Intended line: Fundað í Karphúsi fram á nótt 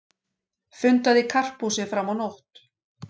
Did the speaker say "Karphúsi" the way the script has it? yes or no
yes